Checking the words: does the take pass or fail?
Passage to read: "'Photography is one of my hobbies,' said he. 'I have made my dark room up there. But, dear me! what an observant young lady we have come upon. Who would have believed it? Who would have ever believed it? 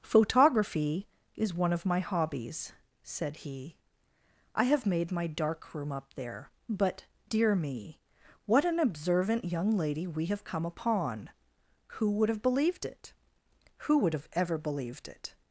pass